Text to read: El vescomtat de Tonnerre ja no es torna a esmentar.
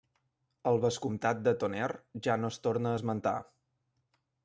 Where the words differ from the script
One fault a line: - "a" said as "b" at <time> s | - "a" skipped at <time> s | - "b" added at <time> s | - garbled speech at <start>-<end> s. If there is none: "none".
none